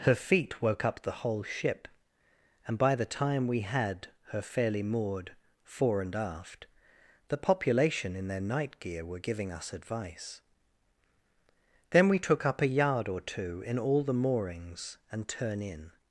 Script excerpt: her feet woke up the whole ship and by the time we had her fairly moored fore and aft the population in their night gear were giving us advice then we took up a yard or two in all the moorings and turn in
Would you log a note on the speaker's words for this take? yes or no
no